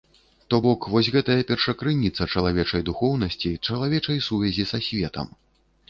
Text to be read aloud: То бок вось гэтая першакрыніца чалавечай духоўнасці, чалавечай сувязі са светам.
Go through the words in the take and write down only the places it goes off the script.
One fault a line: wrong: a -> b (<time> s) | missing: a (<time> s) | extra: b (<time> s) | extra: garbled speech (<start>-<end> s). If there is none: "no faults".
no faults